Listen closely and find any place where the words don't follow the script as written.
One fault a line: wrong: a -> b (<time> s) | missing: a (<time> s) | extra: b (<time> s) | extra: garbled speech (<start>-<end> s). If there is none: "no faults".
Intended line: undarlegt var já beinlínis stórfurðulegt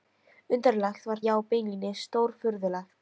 no faults